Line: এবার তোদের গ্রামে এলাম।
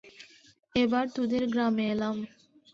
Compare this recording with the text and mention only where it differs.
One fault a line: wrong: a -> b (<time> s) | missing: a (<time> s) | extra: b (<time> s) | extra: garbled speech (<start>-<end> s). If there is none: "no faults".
no faults